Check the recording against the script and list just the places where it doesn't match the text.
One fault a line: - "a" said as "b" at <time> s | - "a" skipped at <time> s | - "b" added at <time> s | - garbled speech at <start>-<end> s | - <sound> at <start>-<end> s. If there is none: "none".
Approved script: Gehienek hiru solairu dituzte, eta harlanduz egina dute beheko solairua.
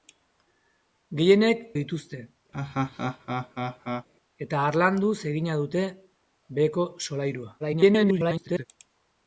- "hiru solairu" skipped at 1.6 s
- laugh at 2.5-4.1 s
- garbled speech at 7.6-8.7 s